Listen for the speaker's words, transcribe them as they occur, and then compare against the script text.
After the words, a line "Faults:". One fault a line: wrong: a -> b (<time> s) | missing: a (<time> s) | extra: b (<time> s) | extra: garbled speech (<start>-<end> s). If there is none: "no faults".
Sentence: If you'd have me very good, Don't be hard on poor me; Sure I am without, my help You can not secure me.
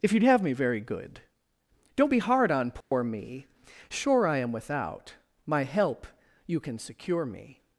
If you'd have me very good, Don't be hard on poor me; Sure I am without, my help You can secure me.
Faults:
missing: not (6.8 s)